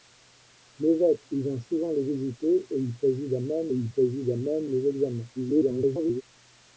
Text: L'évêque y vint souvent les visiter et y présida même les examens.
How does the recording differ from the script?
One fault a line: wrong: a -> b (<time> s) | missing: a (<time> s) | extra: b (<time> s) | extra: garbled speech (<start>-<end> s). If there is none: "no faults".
extra: y présida même (3.7 s)
extra: garbled speech (5.4-6.2 s)